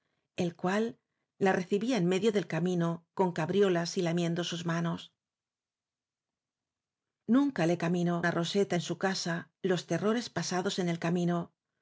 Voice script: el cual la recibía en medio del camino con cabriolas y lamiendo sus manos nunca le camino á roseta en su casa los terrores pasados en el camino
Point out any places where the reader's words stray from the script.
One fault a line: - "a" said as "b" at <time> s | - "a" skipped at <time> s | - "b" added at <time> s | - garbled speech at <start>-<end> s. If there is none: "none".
none